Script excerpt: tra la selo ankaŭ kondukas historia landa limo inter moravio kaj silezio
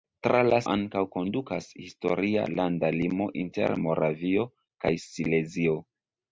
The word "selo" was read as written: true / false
false